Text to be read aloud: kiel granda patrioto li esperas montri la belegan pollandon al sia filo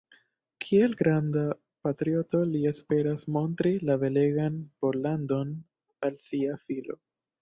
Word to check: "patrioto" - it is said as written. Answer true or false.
true